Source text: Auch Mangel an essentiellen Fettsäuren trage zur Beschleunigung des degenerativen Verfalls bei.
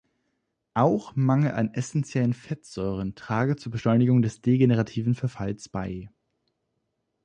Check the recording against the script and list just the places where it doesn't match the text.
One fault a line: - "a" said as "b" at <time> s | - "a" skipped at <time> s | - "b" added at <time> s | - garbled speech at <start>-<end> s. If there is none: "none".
none